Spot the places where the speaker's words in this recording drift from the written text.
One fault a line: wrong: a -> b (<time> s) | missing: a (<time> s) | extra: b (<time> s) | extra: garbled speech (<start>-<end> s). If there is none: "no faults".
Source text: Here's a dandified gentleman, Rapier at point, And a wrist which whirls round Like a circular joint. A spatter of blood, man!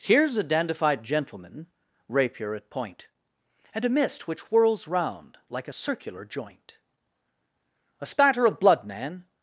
wrong: wrist -> mist (3.9 s)